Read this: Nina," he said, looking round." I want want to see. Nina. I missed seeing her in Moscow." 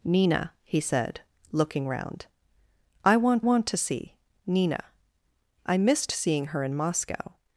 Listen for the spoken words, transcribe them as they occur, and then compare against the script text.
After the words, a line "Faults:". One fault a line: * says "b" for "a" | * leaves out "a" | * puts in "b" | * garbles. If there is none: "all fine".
Nina," he said, looking round." I want want to see. Nina. I missed seeing her in Moscow."
Faults:
all fine